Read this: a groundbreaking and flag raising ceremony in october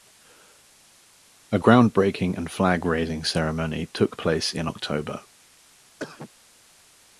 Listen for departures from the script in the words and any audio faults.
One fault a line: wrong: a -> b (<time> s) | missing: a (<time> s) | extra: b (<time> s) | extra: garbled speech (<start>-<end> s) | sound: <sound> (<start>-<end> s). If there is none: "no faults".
extra: took place (3.9 s)
sound: cough (6.0-6.3 s)